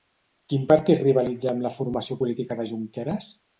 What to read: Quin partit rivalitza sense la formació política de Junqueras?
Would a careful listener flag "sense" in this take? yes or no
yes